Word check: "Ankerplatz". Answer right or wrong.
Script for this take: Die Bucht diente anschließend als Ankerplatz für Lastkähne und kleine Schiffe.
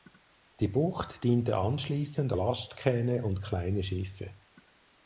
wrong